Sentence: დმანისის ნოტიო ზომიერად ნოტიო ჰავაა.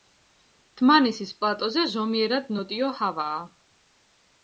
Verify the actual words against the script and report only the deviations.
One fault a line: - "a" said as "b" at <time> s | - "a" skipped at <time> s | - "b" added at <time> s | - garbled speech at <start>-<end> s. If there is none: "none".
- "ნოტიო" said as "პლატოზე" at 1.4 s